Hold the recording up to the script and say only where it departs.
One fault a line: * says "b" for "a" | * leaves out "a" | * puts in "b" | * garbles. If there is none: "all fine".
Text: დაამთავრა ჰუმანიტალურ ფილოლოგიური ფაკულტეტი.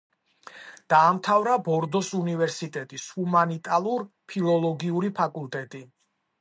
* puts in "ბორდოს უნივერსიტეტის"